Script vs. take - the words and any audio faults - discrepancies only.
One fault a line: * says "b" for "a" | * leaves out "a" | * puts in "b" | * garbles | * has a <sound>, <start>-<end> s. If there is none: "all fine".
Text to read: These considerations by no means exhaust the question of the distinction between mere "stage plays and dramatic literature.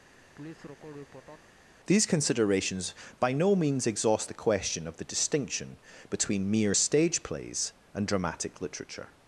* has a laugh, 0.1-1.5 s